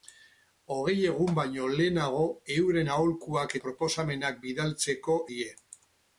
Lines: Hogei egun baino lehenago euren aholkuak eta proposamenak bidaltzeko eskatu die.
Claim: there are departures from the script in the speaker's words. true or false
true